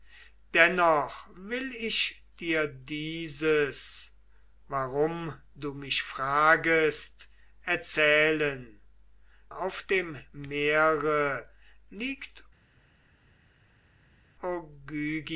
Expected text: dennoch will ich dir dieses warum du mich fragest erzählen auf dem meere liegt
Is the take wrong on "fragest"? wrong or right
right